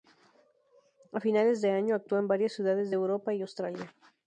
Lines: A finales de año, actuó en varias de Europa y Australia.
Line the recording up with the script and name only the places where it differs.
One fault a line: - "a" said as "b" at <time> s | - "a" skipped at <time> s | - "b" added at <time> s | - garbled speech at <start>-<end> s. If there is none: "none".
- "ciudades" added at 2.5 s